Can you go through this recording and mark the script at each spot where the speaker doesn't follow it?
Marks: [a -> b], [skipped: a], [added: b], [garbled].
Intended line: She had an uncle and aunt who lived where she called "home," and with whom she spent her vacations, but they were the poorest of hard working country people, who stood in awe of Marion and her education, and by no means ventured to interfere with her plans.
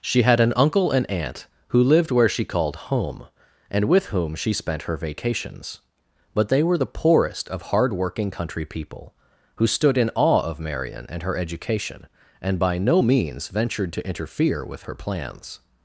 She had an uncle and aunt who lived where she called "home," and with whom she spent her vacations, but they were the poorest of hard working country people, who stood in awe of Marion and her education, and by no means ventured to interfere with her plans.